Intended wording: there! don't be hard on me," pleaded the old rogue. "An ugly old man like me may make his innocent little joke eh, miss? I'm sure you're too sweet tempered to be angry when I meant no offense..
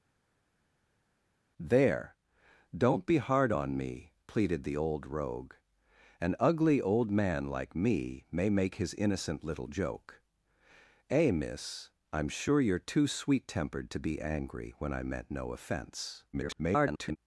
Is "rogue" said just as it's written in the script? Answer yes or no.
yes